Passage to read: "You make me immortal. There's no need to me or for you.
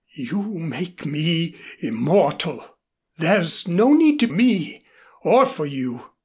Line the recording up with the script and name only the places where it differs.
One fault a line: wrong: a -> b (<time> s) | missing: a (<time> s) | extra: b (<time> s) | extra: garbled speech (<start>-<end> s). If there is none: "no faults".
no faults